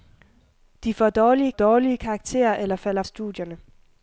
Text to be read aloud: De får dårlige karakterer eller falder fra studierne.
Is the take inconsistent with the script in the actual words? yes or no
yes